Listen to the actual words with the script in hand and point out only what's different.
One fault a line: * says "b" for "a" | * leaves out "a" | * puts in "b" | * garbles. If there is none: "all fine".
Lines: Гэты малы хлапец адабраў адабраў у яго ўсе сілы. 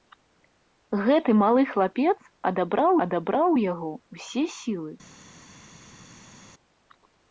all fine